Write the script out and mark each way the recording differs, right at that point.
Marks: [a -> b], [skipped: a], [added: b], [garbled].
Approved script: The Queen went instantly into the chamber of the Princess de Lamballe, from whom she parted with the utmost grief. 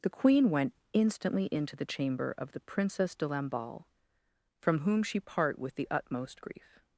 The Queen went instantly into the chamber of the Princess de Lamballe, from whom she [parted -> part] with the utmost grief.